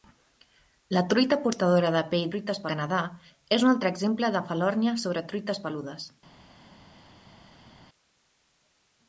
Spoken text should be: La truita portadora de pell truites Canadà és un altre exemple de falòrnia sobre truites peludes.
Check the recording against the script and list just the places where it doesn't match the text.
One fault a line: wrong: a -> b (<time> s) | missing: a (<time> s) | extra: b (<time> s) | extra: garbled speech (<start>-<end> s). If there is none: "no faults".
no faults